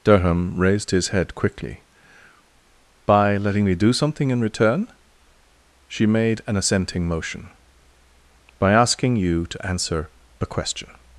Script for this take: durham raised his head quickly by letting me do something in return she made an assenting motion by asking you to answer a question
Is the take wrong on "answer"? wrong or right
right